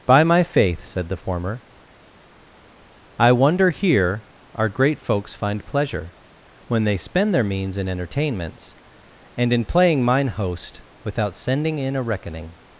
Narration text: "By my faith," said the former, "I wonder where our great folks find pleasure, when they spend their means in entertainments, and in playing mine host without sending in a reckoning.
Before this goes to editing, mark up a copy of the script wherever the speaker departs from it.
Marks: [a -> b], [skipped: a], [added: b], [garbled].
"By my faith," said the former, "I wonder [where -> here] our great folks find pleasure, when they spend their means in entertainments, and in playing mine host without sending in a reckoning.